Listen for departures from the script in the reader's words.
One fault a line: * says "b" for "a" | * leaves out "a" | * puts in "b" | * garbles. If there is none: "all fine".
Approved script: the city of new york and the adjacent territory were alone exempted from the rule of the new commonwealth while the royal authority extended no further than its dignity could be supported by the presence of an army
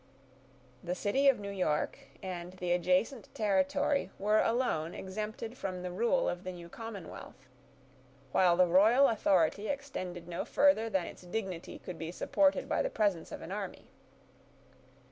all fine